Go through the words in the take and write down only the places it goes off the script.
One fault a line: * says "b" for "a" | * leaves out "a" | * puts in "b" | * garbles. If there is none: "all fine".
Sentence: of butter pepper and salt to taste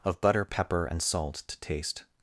all fine